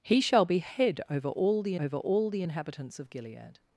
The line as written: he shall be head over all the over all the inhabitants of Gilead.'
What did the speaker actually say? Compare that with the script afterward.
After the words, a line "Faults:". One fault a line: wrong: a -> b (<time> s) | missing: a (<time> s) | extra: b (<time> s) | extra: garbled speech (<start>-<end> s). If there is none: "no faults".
he shall be head over all the over all the inhabitants of Gilead.'
Faults:
no faults